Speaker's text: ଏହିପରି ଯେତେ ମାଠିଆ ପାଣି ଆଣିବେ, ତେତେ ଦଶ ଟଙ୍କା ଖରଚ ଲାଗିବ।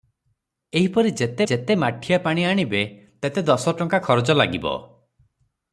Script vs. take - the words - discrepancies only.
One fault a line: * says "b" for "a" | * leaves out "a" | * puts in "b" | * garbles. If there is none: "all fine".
* puts in "ଯେତେ"